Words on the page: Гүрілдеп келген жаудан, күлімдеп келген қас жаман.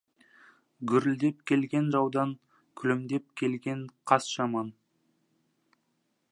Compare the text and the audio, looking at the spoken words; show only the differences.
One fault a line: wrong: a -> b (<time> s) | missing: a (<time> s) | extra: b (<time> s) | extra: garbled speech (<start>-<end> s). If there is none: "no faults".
no faults